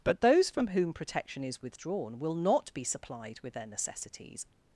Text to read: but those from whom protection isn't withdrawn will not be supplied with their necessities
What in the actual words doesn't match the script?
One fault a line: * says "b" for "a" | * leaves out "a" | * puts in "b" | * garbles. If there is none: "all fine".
* says "is" for "isn't"